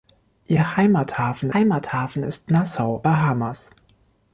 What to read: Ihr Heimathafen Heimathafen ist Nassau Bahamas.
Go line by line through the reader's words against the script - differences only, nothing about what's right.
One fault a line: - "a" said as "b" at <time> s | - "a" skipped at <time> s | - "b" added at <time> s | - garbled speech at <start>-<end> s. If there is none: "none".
none